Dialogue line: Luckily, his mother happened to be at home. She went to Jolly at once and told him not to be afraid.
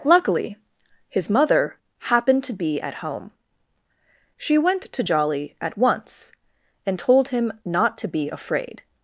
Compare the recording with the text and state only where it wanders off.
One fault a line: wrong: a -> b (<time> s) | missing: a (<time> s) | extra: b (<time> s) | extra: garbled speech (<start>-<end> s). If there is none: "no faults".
no faults